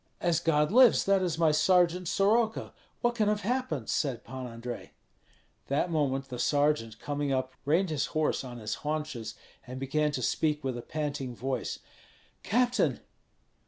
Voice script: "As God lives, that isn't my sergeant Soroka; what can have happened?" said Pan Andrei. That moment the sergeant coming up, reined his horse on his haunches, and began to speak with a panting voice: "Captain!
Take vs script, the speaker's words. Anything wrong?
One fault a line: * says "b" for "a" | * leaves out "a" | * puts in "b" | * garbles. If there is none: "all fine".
* says "is" for "isn't"